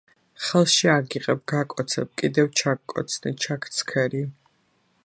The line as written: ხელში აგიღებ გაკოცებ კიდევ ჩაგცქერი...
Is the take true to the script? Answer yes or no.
no